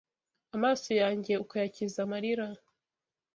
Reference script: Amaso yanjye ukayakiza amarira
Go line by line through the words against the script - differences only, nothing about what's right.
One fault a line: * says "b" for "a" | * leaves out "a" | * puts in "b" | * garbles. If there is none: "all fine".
all fine